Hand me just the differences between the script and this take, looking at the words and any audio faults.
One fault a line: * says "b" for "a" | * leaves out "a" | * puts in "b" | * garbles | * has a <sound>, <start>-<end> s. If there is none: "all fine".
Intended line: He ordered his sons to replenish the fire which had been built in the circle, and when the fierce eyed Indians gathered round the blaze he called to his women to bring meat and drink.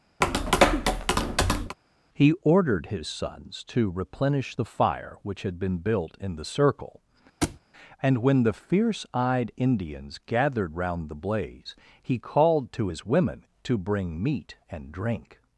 * has a tap, 0.2-1.8 s
* has a thud, 7.4-7.6 s